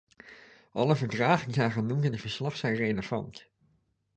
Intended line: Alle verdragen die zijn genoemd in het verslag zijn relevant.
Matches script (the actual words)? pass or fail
pass